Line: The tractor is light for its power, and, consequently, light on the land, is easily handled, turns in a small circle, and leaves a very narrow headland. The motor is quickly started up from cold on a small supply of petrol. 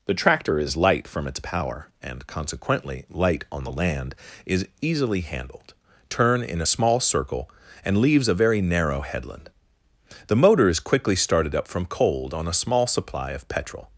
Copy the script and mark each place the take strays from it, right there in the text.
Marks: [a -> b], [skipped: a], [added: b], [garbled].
The tractor is light [for -> from] its power, and, consequently, light on the land, is easily handled, [turns -> turn] in a small circle, and leaves a very narrow headland. The motor is quickly started up from cold on a small supply of petrol.